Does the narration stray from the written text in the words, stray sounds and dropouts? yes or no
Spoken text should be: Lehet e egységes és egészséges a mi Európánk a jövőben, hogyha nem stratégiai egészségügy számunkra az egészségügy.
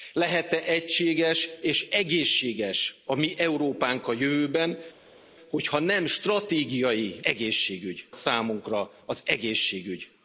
no